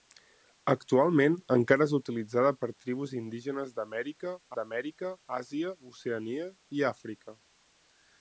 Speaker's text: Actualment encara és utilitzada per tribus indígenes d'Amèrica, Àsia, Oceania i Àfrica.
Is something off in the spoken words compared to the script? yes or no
yes